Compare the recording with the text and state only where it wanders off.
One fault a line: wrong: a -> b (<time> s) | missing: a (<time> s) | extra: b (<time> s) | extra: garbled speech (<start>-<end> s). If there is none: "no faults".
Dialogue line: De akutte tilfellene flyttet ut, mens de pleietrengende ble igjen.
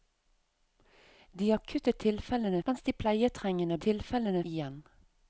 missing: flyttet ut (2.6 s)
wrong: ble -> tilfellene (3.8 s)